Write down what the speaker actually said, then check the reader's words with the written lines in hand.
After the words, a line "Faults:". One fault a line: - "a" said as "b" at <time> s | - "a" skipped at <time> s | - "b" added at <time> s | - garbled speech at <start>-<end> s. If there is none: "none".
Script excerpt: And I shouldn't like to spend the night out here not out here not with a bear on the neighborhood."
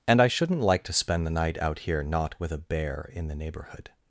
And I shouldn't like to spend the night out here not with a bear in the neighborhood."
Faults:
- "out here not" skipped at 2.4 s
- "on" said as "in" at 3.1 s